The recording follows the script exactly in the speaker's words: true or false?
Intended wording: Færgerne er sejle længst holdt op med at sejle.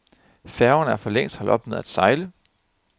false